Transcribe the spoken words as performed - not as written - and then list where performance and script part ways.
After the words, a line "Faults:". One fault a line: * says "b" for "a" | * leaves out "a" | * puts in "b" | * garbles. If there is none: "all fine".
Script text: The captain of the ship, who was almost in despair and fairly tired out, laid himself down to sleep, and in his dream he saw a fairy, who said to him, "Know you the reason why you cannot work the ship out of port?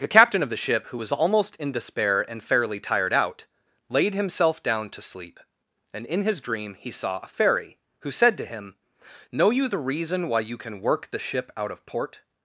The captain of the ship, who was almost in despair and fairly tired out, laid himself down to sleep, and in his dream he saw a fairy, who said to him, "Know you the reason why you can work the ship out of port?
Faults:
* says "can" for "cannot"